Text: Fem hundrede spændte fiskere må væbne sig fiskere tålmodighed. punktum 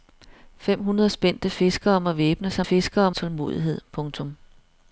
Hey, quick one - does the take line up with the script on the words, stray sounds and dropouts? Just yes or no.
yes